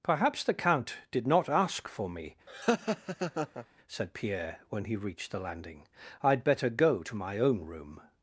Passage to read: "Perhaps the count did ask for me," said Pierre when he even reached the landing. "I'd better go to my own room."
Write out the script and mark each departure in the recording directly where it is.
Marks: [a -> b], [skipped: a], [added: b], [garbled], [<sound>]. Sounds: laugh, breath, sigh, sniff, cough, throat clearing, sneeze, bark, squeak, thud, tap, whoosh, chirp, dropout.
"Perhaps the count did [added: not] ask for me," [laugh] said Pierre when he [skipped: even] reached the landing. "I'd better go to my own room."